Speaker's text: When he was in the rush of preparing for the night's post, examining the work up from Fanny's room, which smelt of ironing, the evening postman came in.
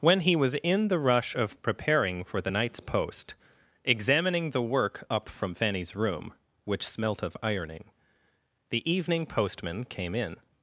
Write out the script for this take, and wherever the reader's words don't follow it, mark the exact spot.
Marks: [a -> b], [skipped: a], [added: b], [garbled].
When he was in the rush of preparing for the night's post, examining the work up from Fanny's room, which smelt of ironing, the evening postman came in.